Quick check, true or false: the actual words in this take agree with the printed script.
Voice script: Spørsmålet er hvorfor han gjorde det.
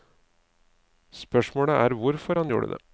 true